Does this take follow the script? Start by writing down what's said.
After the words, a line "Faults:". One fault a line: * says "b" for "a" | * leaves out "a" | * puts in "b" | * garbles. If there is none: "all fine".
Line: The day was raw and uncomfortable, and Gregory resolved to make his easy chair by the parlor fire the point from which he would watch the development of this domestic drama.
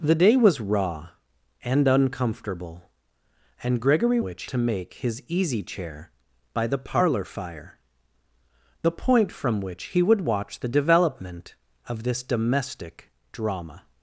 The day was raw and uncomfortable, and Gregory which to make his easy chair by the parlor fire the point from which he would watch the development of this domestic drama.
Faults:
* says "which" for "resolved"